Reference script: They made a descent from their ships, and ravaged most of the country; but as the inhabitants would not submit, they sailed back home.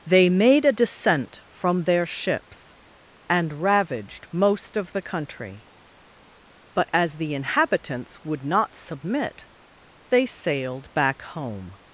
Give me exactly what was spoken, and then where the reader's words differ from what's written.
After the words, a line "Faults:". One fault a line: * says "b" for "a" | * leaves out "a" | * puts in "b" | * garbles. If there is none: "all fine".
They made a descent from their ships, and ravaged most of the country; but as the inhabitants would not submit, they sailed back home.
Faults:
all fine